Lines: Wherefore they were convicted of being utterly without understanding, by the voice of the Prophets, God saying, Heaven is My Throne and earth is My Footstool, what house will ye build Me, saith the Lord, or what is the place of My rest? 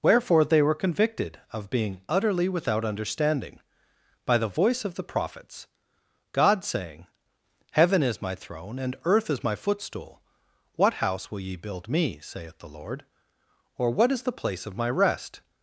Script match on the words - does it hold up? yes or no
yes